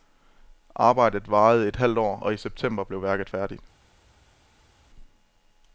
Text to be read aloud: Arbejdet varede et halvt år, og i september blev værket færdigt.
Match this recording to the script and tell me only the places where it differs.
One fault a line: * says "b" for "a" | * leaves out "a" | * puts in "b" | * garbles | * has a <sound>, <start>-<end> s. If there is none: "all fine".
all fine